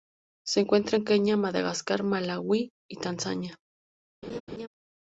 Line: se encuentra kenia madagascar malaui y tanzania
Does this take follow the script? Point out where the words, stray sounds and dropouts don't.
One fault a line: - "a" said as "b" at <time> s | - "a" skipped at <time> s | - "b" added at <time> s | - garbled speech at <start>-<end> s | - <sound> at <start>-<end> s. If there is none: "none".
- "en" added at 0.9 s
- laugh at 4.2-4.7 s